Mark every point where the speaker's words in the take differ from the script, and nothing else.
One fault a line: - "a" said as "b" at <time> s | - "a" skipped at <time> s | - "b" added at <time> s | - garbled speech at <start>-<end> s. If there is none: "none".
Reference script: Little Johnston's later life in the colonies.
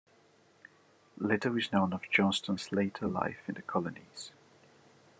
- "is known of" added at 1.6 s